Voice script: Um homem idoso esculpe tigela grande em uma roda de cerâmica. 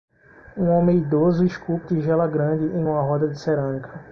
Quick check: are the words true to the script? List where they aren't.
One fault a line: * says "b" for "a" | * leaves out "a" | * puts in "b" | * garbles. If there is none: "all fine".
all fine